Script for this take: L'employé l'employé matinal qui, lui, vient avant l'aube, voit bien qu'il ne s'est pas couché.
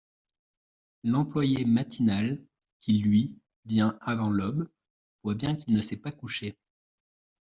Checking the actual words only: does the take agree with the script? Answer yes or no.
no